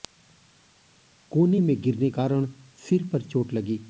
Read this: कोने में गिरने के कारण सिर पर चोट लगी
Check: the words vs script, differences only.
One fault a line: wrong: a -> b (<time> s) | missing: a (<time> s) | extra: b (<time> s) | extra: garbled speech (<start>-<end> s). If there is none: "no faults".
missing: के (2.1 s)